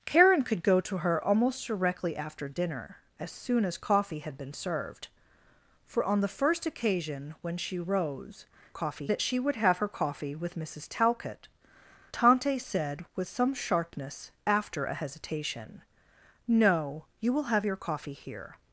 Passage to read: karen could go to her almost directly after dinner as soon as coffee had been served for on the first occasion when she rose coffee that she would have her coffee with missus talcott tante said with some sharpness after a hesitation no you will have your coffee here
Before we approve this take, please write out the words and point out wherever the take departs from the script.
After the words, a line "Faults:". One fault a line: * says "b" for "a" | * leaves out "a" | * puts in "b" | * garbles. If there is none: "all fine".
karen could go to her almost directly after dinner as soon as coffee had been served for on the first occasion when she rose coffee that she would have her coffee with missus talcott tante said with some sharpness after a hesitation no you will have your coffee here
Faults:
all fine